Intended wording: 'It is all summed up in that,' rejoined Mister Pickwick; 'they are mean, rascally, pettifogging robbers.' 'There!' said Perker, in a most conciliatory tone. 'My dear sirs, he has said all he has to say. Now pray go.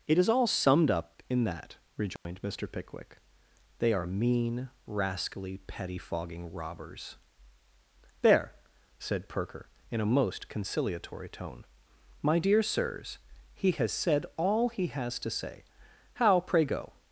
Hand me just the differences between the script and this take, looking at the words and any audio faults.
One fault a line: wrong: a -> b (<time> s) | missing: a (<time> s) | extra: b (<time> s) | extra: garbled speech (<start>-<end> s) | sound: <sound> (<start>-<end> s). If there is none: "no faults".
sound: dropout (2.2-2.3 s)
wrong: Now -> How (16.1 s)